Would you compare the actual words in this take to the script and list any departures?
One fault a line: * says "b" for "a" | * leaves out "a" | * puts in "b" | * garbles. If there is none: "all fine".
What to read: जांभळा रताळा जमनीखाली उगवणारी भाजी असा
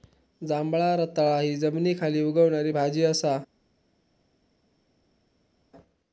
* puts in "हि"